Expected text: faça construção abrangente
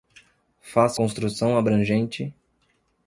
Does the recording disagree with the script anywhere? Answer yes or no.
no